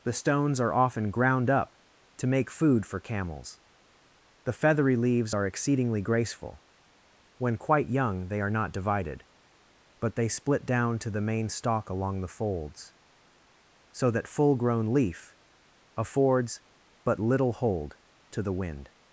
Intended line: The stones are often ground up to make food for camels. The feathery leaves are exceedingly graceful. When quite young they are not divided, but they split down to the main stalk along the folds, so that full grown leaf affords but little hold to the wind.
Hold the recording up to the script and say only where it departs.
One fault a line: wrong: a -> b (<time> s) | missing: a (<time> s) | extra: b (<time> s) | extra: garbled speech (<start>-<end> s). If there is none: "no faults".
no faults